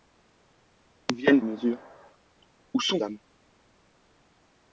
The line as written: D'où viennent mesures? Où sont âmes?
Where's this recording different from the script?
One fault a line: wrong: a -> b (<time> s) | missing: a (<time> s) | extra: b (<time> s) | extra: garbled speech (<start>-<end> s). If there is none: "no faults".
no faults